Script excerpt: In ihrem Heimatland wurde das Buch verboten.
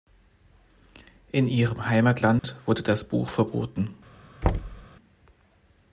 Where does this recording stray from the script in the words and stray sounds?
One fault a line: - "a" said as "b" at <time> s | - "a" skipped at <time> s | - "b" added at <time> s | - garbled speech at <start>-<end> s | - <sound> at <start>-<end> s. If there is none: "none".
- dropout at 2.4-2.4 s
- thud at 4.4-4.9 s